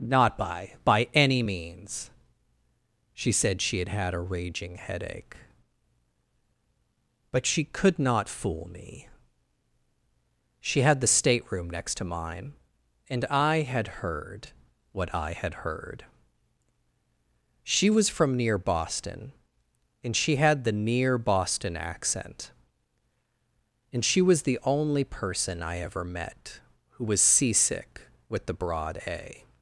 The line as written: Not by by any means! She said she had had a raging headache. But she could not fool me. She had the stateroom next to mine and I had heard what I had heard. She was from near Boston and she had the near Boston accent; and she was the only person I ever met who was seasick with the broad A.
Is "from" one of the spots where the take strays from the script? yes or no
no